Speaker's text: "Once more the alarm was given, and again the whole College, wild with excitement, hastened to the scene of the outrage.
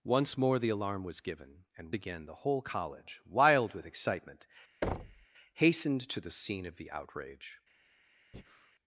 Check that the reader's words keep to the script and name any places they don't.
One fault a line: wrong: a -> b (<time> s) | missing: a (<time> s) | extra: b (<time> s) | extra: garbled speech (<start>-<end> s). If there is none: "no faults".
no faults